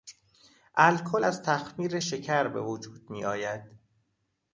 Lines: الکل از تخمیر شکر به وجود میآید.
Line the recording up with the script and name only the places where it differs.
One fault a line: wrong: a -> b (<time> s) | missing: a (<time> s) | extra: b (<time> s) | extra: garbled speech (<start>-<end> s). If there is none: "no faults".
no faults